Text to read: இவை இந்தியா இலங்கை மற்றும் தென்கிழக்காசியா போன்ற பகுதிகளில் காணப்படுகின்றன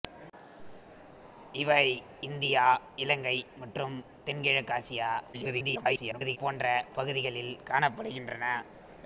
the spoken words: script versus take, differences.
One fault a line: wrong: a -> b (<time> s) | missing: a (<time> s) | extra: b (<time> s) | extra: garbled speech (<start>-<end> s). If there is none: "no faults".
extra: garbled speech (5.3-6.4 s)